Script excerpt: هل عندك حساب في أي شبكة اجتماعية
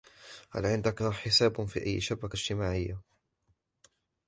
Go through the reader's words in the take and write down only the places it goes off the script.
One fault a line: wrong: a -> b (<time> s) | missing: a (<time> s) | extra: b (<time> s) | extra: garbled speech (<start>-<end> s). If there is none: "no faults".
no faults